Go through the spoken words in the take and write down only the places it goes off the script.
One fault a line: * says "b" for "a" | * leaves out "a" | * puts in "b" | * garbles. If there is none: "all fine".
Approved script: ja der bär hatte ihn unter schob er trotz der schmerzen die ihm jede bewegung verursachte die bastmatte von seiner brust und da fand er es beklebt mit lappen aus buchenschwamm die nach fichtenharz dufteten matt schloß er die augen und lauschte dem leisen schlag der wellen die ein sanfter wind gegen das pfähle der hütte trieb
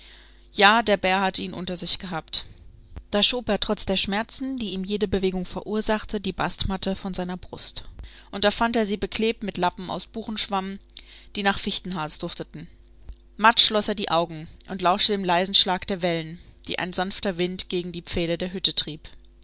* puts in "sich gehabt da"
* says "sie" for "es"
* says "die" for "das"